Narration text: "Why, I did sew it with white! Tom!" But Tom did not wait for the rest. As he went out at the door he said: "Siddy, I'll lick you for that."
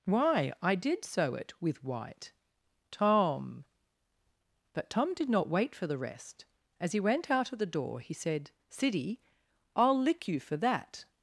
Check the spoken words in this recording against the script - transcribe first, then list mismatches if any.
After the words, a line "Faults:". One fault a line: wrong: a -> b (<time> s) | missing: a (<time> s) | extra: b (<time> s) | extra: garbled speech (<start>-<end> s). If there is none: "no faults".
"Why, I did sew it with white! Tom!" But Tom did not wait for the rest. As he went out of the door he said: "Siddy, I'll lick you for that."
Faults:
wrong: at -> of (7.5 s)